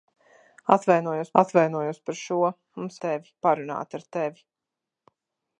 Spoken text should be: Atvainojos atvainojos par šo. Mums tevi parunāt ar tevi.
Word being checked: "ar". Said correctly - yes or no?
yes